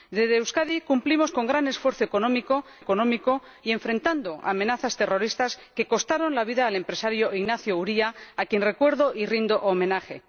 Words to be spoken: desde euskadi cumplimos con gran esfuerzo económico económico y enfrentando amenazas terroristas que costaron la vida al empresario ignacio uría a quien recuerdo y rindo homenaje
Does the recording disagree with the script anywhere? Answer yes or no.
no